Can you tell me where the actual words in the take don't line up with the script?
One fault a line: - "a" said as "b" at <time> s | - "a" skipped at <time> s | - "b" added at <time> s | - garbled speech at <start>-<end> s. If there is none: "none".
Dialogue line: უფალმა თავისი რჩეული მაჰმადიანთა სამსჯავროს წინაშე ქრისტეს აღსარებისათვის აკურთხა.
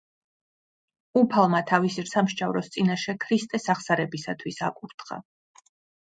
- "რჩეული მაჰმადიანთა" skipped at 2.0 s